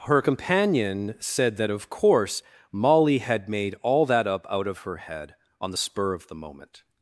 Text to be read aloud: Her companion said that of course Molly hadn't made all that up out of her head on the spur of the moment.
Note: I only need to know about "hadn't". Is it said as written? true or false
false